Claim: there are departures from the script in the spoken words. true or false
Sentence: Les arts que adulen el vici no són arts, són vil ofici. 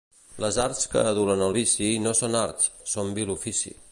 false